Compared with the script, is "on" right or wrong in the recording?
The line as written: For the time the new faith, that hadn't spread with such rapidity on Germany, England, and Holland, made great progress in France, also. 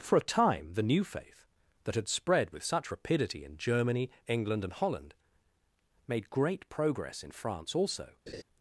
wrong